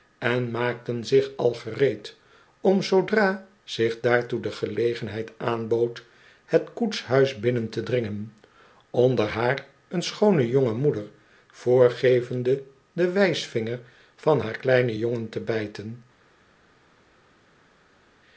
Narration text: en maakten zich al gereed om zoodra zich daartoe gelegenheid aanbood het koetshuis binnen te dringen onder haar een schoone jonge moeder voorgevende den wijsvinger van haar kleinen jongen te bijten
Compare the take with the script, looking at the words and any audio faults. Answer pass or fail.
fail